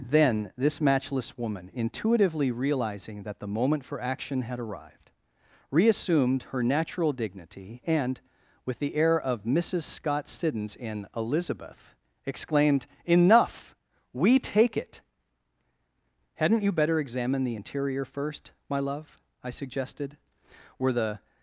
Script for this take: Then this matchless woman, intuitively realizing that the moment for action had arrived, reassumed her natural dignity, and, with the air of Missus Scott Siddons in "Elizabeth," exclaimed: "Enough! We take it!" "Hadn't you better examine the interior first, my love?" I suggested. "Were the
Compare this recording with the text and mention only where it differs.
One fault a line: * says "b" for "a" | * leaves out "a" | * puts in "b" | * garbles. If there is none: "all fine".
all fine